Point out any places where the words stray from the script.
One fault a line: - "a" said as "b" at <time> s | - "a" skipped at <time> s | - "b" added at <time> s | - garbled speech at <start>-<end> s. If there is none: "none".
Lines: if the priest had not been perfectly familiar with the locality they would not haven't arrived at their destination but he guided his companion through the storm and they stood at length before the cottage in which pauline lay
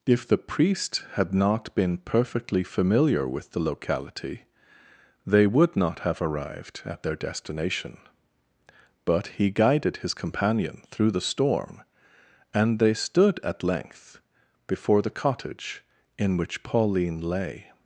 - "haven't" said as "have" at 6.0 s